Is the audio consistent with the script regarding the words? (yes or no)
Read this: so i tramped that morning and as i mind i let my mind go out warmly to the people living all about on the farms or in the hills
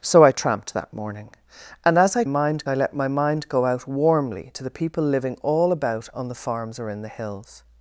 yes